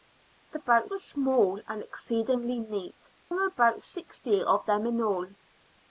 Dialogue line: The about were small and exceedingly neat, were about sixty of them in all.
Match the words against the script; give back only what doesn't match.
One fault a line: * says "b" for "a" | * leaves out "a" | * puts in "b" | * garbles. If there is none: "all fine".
all fine